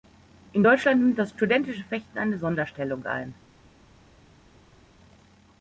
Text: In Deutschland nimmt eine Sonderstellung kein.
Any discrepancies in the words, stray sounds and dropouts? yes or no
yes